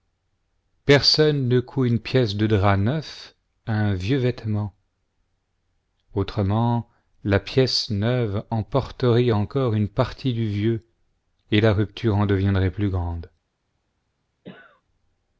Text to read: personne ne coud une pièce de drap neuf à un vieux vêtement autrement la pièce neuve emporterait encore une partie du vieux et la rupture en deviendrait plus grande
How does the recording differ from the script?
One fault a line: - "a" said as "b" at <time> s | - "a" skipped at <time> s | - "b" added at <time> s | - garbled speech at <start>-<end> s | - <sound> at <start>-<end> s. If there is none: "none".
- cough at 14.4-14.8 s